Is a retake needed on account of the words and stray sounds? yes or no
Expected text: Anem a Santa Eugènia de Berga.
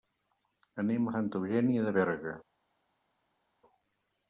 no